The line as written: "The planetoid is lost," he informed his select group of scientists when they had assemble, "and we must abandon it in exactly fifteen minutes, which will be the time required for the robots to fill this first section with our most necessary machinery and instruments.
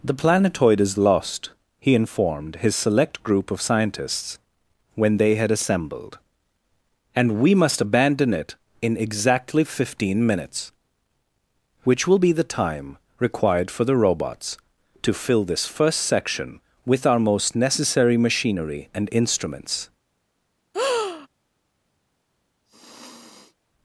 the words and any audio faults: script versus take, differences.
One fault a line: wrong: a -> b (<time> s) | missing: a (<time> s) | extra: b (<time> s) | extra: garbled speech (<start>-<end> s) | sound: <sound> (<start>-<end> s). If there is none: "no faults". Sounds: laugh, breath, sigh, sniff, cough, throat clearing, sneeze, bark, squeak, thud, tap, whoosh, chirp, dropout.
wrong: assemble -> assembled (5.5 s)
sound: breath (20.7-21.3 s)
sound: sniff (22.7-23.6 s)